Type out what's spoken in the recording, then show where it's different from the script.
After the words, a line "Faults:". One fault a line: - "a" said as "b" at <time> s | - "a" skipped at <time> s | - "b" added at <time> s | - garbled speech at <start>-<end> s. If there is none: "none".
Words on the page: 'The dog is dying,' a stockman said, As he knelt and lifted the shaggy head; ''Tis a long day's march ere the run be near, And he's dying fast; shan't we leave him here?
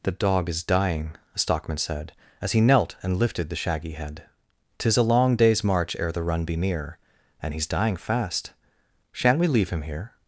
'The dog is dying,' a stockman said, As he knelt and lifted the shaggy head; ''Tis a long day's march ere the run be near, And he's dying fast; shan't we leave him here?
Faults:
none